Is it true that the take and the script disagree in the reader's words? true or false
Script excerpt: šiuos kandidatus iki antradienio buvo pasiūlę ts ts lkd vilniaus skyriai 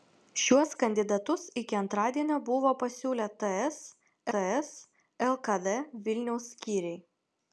false